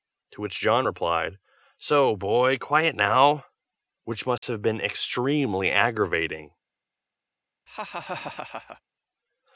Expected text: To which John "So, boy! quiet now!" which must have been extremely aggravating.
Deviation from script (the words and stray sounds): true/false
true